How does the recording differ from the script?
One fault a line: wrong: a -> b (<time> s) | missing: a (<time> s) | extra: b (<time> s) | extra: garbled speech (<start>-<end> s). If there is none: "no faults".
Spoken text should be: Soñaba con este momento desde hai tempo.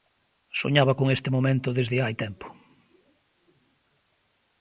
no faults